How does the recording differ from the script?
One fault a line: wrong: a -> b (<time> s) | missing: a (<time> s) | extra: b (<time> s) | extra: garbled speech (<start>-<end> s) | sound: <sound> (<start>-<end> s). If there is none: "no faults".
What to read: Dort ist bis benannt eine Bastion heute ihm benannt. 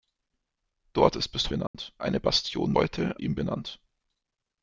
sound: dropout (1.7-1.7 s)